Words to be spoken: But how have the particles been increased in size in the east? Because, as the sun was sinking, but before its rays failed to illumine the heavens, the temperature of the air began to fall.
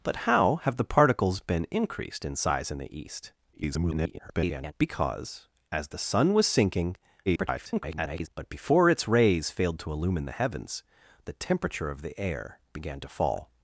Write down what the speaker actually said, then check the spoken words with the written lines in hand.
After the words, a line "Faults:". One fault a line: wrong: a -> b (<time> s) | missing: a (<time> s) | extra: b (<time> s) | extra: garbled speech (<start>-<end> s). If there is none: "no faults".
But how have the particles been increased in size in the east? [garbled] Because, as the sun was sinking, [garbled] but before its rays failed to illumine the heavens, the temperature of the air began to fall.
Faults:
extra: garbled speech (3.5-4.7 s)
extra: garbled speech (7.3-8.3 s)